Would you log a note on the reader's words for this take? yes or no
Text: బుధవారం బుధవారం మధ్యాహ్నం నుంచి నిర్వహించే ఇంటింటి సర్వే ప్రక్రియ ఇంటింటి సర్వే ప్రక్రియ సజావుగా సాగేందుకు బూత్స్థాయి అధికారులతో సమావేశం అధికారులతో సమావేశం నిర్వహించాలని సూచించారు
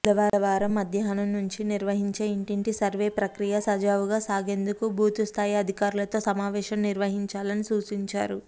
yes